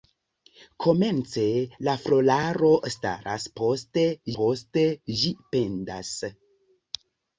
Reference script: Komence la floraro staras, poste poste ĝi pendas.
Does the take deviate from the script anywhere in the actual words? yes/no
no